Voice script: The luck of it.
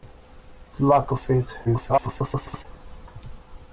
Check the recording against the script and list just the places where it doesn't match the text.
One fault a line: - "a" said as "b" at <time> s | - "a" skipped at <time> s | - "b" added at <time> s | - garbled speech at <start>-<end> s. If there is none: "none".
- garbled speech at 1.6-2.7 s